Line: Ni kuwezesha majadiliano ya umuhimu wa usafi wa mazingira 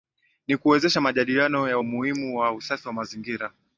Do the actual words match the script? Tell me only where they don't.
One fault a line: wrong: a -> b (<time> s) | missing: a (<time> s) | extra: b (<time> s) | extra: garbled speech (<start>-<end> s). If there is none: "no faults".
no faults